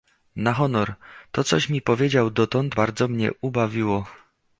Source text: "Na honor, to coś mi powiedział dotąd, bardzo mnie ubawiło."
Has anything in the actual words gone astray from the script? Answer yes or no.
no